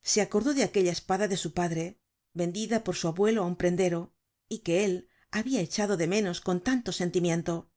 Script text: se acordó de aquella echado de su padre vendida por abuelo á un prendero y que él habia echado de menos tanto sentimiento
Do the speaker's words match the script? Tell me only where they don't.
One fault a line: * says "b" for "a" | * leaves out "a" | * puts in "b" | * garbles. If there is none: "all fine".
* says "espada" for "echado"
* puts in "su"
* puts in "con"